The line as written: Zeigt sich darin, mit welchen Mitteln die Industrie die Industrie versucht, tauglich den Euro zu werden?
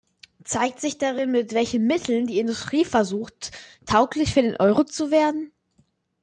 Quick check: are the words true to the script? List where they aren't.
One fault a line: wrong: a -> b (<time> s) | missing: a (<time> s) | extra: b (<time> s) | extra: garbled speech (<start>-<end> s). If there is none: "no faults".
missing: die Industrie (2.9 s)
extra: für (4.3 s)